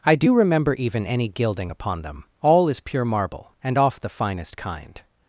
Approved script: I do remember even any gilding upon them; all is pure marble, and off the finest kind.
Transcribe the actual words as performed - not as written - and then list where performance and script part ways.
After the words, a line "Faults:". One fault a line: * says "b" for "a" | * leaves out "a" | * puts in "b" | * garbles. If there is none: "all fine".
I do remember even any gilding upon them; all is pure marble, and off the finest kind.
Faults:
all fine